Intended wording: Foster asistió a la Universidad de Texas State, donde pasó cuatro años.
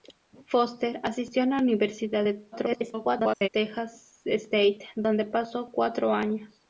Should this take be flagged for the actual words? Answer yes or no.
yes